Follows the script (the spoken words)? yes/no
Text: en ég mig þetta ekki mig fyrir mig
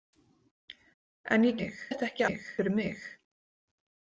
yes